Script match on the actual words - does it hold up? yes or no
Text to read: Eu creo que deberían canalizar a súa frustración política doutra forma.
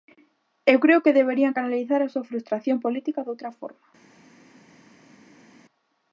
yes